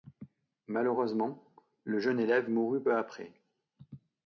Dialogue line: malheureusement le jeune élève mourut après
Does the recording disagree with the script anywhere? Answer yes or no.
yes